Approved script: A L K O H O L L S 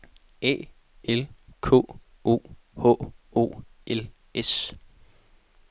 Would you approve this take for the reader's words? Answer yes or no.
no